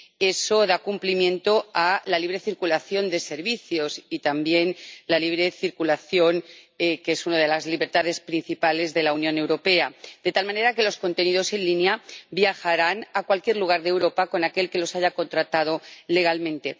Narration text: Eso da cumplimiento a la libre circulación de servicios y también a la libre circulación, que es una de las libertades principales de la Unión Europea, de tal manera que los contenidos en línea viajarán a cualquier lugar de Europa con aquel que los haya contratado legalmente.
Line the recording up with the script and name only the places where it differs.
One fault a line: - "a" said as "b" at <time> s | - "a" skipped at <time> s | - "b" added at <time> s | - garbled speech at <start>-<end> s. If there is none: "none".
none